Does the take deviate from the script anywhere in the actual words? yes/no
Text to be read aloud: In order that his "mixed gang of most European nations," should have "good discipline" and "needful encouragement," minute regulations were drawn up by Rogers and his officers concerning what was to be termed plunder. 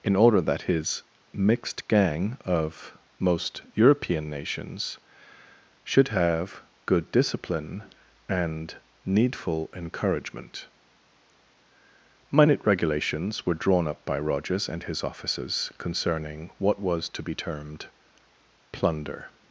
no